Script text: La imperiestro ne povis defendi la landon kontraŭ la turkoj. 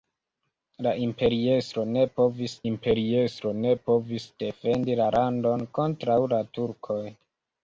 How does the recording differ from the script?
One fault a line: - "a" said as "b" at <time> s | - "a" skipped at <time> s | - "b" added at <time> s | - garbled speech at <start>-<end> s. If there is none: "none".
- "imperiestro ne povis" added at 2.7 s